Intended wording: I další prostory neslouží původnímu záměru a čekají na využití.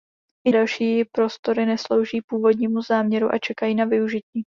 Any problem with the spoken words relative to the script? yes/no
no